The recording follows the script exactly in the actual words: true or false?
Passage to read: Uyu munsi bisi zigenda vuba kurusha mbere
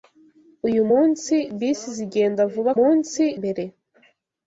false